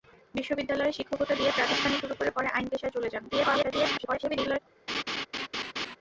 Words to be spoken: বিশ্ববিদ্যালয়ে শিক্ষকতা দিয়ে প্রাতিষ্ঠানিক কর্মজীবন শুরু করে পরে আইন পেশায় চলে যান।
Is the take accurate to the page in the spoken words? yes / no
no